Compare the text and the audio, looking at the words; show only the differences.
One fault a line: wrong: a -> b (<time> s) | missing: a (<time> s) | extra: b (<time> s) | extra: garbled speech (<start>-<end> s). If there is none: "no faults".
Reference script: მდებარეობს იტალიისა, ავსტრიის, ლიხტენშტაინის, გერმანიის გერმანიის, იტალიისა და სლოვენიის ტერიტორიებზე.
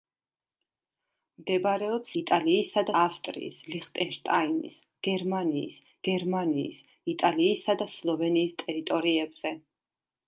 no faults